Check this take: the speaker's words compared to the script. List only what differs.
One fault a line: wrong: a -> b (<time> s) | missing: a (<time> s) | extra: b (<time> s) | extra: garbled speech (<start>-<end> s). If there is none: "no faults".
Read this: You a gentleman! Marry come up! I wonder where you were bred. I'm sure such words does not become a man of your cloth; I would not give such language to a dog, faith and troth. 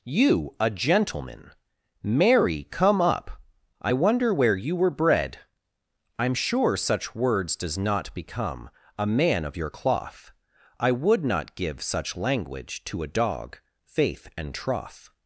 no faults